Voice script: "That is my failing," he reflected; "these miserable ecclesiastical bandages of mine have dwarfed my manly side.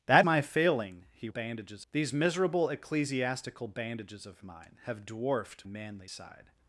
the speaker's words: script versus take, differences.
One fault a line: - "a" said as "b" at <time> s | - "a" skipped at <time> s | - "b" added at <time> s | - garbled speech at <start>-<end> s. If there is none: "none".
- "is" skipped at 0.2 s
- "reflected" said as "bandages" at 1.3 s
- "my" skipped at 5.7 s